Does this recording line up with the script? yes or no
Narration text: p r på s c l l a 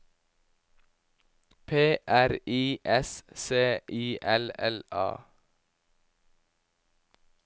no